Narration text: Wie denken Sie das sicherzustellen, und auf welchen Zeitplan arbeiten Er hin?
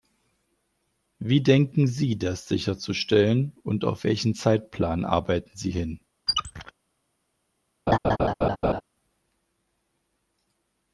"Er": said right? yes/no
no